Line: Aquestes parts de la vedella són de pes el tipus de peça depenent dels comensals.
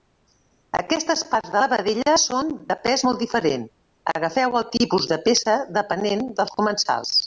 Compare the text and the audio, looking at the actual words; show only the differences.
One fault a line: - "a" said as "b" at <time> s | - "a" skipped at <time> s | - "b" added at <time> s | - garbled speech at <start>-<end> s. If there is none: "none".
- "molt diferent agafeu" added at 3.1 s